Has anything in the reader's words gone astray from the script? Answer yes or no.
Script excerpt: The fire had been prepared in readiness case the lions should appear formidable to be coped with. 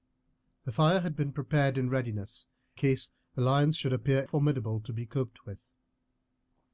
no